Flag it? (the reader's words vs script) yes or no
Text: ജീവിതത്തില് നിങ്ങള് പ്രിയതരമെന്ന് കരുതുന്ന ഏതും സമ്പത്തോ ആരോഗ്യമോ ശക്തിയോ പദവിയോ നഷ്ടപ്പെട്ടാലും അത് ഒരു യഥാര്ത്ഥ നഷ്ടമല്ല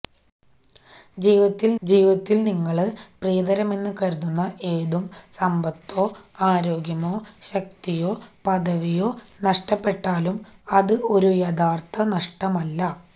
yes